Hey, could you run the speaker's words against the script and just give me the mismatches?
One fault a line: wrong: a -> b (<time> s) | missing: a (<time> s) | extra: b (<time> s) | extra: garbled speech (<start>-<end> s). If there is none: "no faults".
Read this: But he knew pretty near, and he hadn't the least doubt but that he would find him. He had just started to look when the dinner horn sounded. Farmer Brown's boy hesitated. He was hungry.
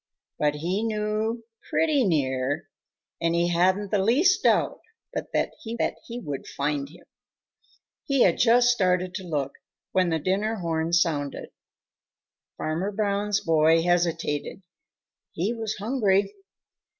extra: that he (5.8 s)